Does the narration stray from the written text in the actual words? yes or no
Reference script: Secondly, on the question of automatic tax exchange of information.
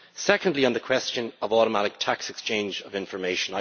no